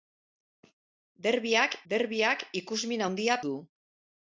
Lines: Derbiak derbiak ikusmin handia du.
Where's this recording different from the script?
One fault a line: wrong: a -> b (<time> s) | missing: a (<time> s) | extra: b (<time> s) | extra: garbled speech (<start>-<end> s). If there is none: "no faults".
no faults